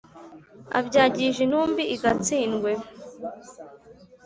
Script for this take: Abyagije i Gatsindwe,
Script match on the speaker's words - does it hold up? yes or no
no